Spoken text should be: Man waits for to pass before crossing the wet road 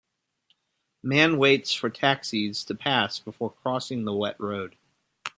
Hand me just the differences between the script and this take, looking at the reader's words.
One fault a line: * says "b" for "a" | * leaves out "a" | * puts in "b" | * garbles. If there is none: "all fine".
* puts in "taxis"